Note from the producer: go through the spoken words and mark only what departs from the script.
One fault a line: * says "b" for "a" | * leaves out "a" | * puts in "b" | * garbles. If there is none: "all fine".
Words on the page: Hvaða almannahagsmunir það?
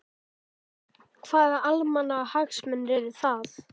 * puts in "eru"